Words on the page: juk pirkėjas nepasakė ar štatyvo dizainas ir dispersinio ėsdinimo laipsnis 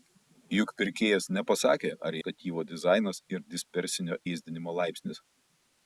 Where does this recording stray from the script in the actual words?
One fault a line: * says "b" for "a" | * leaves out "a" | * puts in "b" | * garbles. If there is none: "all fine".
all fine